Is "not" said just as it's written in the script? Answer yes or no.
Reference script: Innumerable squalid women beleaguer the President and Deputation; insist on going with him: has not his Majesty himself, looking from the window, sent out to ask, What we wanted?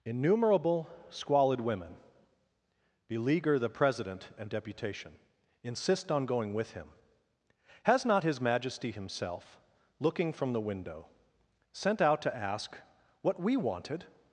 yes